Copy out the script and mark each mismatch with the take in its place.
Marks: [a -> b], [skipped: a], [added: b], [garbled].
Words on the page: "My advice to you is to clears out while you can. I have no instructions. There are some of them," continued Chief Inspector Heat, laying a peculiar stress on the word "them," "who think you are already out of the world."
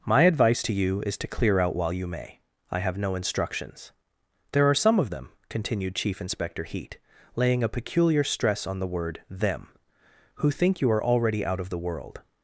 "My advice to you is to [clears -> clear] out while you [can. -> may] I have no instructions. There are some of them," continued Chief Inspector Heat, laying a peculiar stress on the word "them," "who think you are already out of the world."